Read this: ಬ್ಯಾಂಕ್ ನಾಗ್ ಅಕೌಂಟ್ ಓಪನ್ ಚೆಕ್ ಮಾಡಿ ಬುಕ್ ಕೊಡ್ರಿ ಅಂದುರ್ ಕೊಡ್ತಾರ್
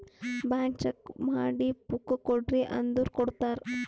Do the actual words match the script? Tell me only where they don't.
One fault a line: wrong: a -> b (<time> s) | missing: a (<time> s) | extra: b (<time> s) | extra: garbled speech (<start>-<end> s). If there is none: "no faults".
missing: ನಾಗ್ ಅಕೌಂಟ್ ಓಪನ್ (0.8 s)